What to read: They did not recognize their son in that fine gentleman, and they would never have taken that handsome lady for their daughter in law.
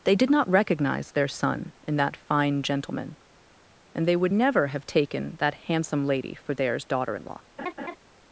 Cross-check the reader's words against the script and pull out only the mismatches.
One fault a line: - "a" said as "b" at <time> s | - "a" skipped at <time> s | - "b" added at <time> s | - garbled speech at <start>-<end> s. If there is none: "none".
- "their" said as "theirs" at 6.5 s